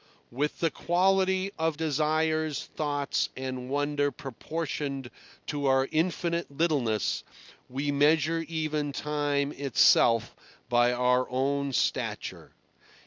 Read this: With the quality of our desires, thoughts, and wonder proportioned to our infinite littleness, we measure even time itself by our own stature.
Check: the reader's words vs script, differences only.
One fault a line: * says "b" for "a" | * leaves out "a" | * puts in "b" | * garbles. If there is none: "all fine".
* leaves out "our"